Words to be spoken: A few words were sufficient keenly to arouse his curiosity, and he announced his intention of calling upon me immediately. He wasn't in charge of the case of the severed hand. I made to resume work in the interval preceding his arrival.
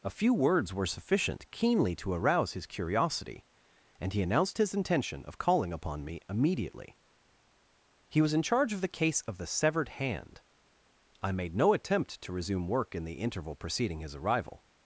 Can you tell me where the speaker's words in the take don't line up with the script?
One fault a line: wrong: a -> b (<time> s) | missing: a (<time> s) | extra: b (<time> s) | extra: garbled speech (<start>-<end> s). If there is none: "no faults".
wrong: wasn't -> was (8.2 s)
extra: no attempt (11.6 s)